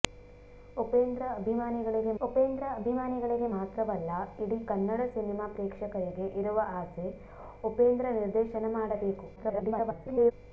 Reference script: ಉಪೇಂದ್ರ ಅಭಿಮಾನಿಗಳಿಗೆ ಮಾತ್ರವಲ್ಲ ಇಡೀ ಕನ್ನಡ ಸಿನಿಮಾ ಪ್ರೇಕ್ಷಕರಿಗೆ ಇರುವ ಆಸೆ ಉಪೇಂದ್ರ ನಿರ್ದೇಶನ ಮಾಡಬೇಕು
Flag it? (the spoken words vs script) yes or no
yes